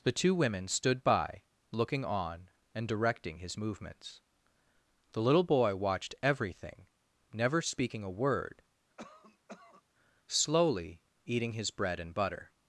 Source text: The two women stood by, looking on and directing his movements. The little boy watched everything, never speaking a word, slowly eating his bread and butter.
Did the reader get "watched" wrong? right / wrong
right